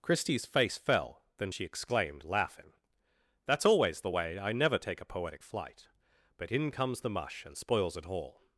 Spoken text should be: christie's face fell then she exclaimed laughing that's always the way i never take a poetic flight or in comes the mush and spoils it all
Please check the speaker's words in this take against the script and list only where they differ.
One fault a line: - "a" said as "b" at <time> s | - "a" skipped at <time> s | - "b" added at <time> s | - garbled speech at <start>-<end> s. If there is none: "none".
- "or" said as "but" at 6.4 s